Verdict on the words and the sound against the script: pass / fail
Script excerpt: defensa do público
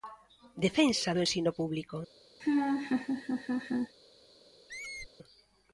fail